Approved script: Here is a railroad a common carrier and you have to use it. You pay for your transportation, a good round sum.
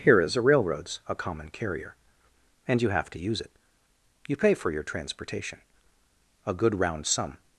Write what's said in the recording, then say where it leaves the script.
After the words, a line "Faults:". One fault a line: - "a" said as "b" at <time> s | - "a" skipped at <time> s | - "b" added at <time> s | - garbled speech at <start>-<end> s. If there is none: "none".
Here is a railroads a common carrier and you have to use it. You pay for your transportation, a good round sum.
Faults:
- "railroad" said as "railroads" at 0.4 s